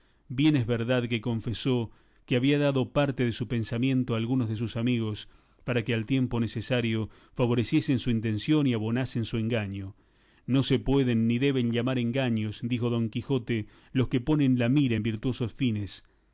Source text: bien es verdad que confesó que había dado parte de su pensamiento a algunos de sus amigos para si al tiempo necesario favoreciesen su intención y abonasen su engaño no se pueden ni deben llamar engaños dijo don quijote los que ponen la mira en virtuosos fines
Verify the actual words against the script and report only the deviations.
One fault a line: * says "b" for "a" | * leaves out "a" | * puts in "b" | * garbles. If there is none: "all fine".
* says "que" for "si"